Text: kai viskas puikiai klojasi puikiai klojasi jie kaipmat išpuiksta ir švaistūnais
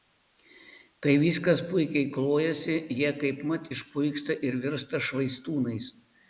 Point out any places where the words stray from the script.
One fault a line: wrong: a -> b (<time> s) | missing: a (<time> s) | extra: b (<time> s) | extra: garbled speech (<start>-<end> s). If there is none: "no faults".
missing: puikiai klojasi (2.8 s)
extra: virsta (4.7 s)